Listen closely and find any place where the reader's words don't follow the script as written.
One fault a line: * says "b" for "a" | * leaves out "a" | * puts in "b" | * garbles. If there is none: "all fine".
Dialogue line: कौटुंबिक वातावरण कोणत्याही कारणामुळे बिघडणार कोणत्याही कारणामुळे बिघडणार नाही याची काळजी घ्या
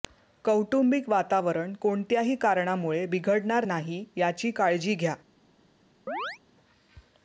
* leaves out "कोणत्याही कारणामुळे बिघडणार"